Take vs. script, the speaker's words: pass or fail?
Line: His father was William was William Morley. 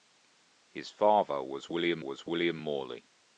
pass